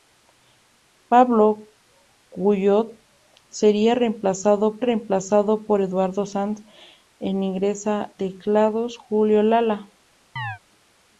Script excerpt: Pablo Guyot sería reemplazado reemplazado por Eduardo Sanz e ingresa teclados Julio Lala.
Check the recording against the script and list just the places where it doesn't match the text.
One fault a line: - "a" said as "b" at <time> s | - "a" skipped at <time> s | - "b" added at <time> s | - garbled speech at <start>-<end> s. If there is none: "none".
none